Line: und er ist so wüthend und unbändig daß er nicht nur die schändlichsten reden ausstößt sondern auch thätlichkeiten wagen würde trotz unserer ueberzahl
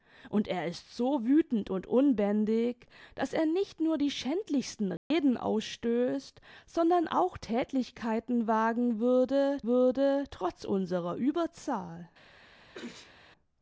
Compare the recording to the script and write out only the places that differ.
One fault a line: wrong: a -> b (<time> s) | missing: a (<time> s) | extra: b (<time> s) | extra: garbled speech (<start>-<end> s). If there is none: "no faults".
extra: würde (9.7 s)